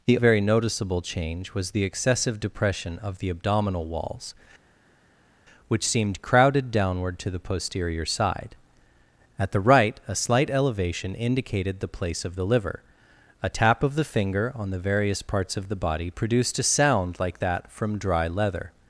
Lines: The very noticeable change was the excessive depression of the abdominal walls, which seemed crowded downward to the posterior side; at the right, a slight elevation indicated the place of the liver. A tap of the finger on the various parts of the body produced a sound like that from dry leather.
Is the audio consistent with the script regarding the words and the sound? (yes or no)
yes